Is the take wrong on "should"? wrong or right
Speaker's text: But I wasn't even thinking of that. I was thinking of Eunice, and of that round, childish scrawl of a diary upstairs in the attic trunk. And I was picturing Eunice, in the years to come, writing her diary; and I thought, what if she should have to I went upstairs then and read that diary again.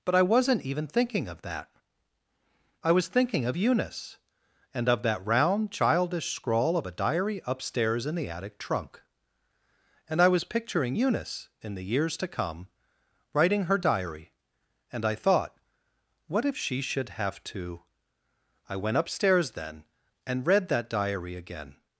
right